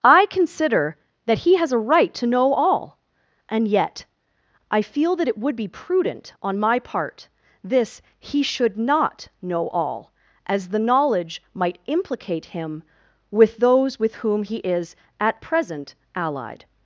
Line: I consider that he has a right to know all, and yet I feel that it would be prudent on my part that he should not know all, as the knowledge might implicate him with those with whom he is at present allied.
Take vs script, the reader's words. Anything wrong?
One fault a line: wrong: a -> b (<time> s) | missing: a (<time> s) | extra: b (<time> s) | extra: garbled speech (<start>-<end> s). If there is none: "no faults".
wrong: that -> this (7.6 s)